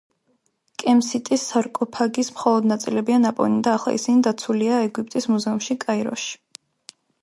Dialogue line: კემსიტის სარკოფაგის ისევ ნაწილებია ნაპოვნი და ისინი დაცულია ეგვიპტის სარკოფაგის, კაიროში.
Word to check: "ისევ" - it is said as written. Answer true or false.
false